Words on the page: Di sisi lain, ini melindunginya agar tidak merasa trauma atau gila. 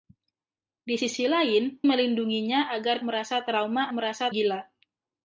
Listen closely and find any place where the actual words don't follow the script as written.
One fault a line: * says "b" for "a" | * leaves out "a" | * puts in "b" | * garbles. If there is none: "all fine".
* leaves out "ini"
* leaves out "tidak"
* says "merasa" for "atau"